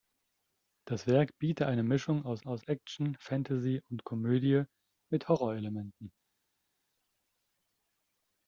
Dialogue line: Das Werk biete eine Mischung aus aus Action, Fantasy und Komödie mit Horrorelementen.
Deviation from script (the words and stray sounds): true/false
false